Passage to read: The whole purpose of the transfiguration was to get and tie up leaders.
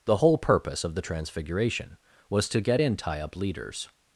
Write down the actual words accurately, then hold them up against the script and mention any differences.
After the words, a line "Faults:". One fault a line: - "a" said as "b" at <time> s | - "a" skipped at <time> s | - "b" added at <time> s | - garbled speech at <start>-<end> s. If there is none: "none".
The whole purpose of the transfiguration was to get in tie up leaders.
Faults:
- "and" said as "in" at 2.8 s